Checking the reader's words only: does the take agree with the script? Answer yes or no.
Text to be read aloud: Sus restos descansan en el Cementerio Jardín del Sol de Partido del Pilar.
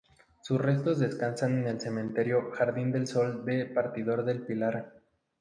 yes